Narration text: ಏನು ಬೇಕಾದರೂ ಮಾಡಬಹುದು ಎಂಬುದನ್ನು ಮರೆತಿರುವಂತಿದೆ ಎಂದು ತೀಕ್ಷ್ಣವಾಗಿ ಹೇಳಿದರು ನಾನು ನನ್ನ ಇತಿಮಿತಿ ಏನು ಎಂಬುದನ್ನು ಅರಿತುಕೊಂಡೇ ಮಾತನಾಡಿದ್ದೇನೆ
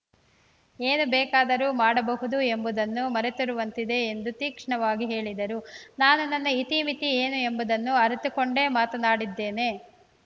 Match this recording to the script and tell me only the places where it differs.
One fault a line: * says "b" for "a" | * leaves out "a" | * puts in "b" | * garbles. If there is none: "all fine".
all fine